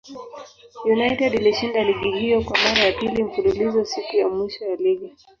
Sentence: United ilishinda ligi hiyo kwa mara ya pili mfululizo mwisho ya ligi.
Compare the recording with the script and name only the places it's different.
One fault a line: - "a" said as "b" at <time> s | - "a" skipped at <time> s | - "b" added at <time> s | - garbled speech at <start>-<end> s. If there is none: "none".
- "siku ya" added at 3.9 s